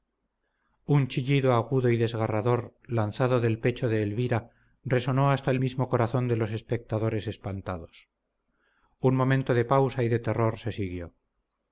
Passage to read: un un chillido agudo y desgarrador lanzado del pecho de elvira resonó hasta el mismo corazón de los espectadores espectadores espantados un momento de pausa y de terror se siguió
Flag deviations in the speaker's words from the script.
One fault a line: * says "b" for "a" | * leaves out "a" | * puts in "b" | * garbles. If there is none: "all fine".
* leaves out "un"
* leaves out "espectadores"